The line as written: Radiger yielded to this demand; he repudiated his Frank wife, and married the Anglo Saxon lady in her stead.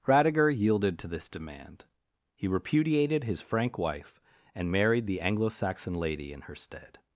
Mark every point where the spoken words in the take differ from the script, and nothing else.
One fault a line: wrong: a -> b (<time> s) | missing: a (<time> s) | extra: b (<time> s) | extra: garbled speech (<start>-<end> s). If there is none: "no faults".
no faults